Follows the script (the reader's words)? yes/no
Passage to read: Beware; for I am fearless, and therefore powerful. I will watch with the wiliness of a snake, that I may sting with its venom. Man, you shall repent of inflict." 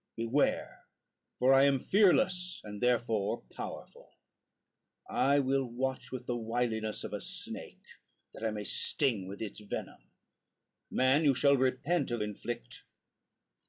yes